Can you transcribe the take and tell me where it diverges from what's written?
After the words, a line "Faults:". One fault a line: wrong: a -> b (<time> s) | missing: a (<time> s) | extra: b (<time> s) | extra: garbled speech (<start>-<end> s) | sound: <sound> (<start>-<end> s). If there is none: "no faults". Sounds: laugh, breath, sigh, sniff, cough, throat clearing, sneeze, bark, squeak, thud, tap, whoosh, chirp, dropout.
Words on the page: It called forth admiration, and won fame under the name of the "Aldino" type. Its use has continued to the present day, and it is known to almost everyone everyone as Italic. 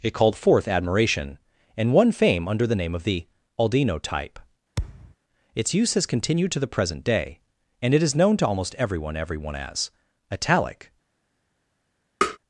It called forth admiration, and won fame under the name of the "Aldino" type. Its use has continued to the present day, and it is known to almost everyone everyone as Italic.
Faults:
sound: thud (4.8-5.2 s)
sound: tap (12.2-12.4 s)